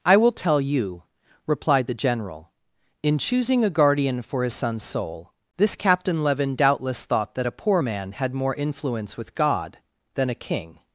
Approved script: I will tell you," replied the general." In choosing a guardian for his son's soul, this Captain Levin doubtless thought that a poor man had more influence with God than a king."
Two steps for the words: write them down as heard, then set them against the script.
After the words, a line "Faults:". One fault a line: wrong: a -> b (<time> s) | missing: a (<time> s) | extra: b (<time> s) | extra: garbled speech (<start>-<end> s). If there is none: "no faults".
I will tell you," replied the general." In choosing a guardian for his son's soul, this Captain Levin doubtless thought that a poor man had more influence with God than a king."
Faults:
no faults